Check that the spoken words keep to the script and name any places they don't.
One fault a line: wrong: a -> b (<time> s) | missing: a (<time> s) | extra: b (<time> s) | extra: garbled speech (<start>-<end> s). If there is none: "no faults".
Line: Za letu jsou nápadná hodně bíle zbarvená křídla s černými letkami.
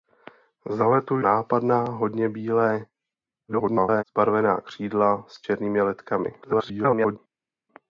missing: jsou (1.2 s)
extra: garbled speech (3.5-4.0 s)
extra: garbled speech (6.4-7.2 s)